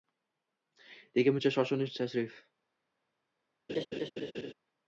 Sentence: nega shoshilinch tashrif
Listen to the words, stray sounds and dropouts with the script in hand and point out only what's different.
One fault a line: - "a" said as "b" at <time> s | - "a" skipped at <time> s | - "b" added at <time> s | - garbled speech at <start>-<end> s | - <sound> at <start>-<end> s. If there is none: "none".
- "buncha" added at 1.3 s
- laugh at 3.7-4.5 s